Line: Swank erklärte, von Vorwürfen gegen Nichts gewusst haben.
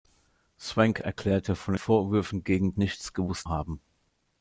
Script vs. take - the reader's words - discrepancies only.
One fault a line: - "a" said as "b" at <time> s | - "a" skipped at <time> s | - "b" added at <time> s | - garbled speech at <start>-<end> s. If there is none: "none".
none